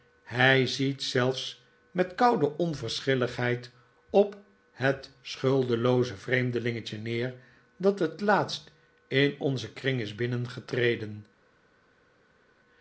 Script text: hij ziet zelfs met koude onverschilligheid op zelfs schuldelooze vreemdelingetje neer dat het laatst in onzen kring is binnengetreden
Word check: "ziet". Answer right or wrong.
right